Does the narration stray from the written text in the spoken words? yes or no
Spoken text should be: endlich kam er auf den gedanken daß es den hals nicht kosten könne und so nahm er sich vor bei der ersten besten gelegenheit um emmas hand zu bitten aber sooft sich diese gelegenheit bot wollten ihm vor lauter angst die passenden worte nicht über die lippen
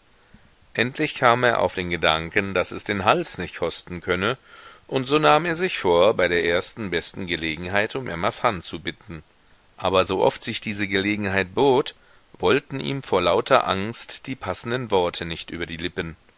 no